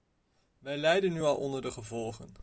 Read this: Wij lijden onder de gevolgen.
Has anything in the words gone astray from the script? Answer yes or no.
yes